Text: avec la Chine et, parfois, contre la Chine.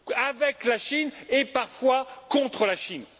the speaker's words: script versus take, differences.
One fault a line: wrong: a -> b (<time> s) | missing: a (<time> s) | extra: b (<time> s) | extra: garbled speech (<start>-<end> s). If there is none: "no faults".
no faults